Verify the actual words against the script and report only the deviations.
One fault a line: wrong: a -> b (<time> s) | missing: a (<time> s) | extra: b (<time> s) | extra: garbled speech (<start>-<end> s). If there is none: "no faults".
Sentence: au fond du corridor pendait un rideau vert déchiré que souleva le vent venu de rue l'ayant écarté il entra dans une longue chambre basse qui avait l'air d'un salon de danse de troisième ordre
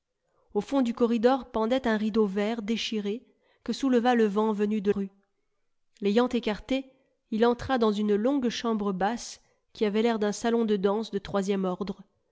no faults